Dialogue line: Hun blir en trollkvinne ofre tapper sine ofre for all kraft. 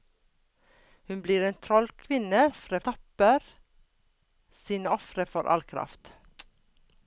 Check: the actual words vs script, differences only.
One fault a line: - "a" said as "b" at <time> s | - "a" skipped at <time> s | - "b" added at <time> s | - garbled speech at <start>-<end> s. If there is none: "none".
none